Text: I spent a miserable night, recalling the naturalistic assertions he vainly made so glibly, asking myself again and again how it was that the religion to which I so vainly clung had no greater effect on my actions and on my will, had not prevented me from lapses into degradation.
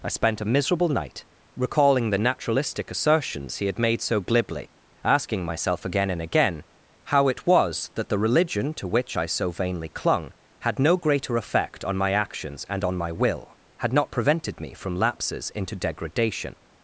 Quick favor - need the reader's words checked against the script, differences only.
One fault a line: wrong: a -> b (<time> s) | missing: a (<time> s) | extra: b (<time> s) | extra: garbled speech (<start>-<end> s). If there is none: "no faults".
wrong: vainly -> had (3.7 s)